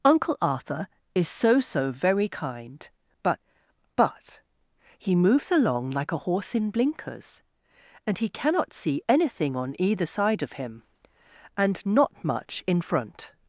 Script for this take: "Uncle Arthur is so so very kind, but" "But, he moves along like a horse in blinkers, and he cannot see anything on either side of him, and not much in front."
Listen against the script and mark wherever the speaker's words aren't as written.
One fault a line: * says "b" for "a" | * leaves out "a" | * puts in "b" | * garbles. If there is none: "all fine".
all fine